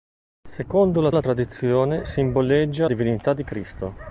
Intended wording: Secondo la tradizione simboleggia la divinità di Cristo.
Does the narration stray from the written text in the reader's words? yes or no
yes